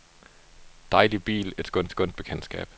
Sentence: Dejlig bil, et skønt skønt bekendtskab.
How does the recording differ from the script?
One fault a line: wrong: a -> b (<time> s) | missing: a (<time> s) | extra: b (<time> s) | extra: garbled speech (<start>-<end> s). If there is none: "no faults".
no faults